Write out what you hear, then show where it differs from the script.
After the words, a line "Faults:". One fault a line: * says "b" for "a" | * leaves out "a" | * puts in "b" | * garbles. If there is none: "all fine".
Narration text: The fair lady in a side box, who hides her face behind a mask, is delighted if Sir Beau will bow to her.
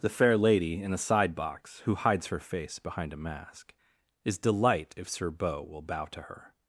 The fair lady in a side box, who hides her face behind a mask, is delight if Sir Beau will bow to her.
Faults:
* says "delight" for "delighted"